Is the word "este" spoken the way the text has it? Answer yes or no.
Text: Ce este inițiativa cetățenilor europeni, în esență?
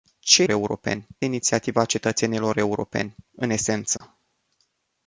no